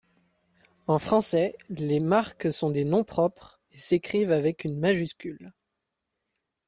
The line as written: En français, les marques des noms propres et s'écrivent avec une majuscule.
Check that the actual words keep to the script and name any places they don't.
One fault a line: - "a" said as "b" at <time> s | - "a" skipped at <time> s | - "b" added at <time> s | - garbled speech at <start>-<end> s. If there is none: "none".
- "sont" added at 2.5 s